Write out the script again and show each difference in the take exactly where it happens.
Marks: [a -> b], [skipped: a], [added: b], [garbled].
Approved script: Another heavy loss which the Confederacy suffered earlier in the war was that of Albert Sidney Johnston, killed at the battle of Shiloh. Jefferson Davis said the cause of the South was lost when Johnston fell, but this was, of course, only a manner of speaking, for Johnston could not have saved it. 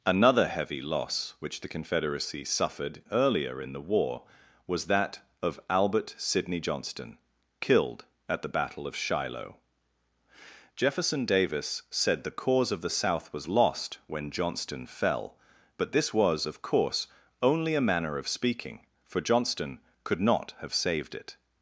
Another heavy loss which the Confederacy suffered earlier in the war was that of Albert Sidney Johnston, killed at the battle of Shiloh. Jefferson Davis said the cause of the South was lost when Johnston fell, but this was, of course, only a manner of speaking, for Johnston could not have saved it.